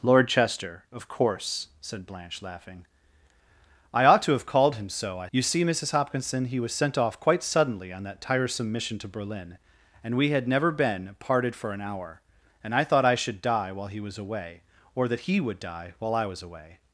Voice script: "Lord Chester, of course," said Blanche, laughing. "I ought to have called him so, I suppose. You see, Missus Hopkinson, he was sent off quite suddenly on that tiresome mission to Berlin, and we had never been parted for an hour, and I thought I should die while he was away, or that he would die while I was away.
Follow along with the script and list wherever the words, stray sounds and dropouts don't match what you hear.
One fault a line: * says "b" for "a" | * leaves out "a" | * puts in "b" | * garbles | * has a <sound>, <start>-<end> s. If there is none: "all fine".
* leaves out "suppose"